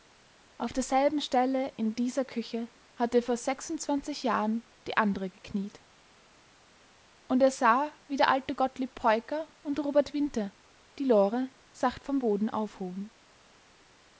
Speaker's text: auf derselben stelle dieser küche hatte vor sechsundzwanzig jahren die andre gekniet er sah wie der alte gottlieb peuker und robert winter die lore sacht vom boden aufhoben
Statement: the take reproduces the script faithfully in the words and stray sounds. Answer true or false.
false